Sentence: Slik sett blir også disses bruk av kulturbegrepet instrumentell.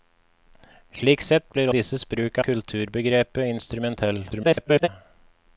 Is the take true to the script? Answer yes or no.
no